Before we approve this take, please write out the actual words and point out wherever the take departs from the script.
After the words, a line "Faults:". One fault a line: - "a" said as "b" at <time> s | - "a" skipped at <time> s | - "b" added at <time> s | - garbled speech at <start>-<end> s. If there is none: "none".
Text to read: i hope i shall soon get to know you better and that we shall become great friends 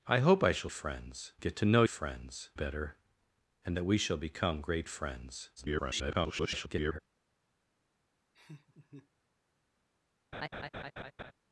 i hope i shall friends get to know friends better and that we shall become great friends [garbled]
Faults:
- "soon" said as "friends" at 0.7 s
- "you" said as "friends" at 1.9 s
- garbled speech at 5.6-7.0 s